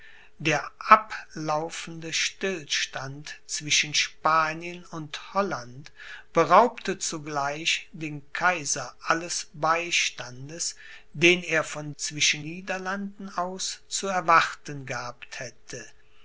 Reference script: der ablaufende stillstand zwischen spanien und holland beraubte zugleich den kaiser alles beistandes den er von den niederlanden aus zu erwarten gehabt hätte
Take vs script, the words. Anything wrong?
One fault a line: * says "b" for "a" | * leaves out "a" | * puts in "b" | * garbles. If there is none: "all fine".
* says "zwischen" for "den"